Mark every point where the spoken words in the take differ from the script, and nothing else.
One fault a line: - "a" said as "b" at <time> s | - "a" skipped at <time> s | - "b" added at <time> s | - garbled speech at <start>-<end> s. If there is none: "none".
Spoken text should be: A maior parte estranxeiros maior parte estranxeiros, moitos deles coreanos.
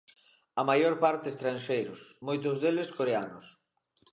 - "maior parte estranxeiros" skipped at 2.0 s